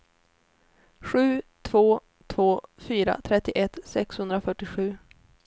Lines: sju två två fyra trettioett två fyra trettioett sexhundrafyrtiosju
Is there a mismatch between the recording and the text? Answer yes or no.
yes